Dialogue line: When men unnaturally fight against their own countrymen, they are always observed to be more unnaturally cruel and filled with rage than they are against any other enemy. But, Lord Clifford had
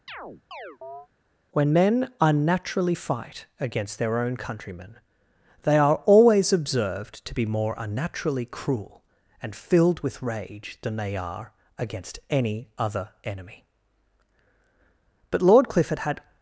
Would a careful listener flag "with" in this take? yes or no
no